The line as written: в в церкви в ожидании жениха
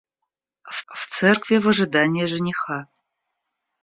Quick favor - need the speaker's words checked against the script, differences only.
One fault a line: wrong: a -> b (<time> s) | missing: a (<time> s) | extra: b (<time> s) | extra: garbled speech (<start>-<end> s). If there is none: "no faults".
no faults